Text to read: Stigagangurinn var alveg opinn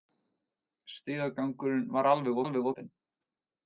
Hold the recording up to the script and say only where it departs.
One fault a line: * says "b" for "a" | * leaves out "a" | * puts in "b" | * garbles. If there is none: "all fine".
* puts in "alveg"